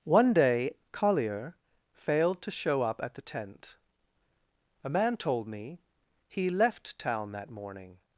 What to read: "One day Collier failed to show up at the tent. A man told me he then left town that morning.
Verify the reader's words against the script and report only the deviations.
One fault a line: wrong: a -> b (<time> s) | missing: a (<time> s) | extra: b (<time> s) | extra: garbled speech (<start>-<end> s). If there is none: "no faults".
missing: then (6.5 s)